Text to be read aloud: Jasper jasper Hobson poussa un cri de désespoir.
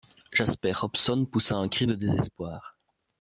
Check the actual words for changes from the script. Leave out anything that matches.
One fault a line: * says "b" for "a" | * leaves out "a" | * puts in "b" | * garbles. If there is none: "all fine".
* leaves out "jasper"